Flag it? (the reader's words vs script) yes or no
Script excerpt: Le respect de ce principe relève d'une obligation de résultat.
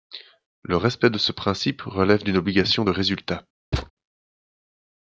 no